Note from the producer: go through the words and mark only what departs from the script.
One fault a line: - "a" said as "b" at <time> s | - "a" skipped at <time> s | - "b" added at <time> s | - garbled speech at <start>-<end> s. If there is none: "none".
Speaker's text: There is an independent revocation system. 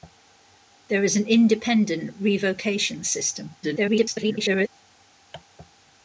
- garbled speech at 3.6-4.7 s